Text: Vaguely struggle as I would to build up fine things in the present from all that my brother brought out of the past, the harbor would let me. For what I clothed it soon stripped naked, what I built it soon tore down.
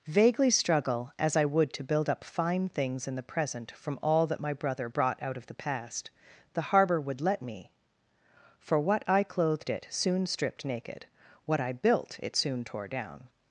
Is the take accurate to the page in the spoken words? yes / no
yes